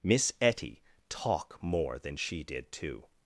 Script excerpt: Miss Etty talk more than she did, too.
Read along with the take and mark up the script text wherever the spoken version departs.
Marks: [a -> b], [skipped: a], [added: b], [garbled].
Miss Etty talk more than she did, too.